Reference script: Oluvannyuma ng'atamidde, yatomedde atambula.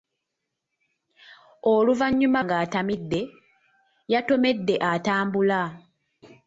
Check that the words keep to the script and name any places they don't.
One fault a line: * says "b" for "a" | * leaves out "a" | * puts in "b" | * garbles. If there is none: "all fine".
all fine